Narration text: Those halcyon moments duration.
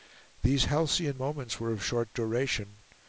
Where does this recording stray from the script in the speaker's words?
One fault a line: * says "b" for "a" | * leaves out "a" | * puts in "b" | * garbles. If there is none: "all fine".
* says "These" for "Those"
* puts in "were of short"